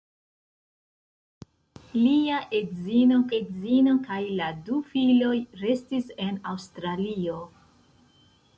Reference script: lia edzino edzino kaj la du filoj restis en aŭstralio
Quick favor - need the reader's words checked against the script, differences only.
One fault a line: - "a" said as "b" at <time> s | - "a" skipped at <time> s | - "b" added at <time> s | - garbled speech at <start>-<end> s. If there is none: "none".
none